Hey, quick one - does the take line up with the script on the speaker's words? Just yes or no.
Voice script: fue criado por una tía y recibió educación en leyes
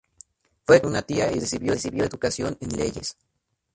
no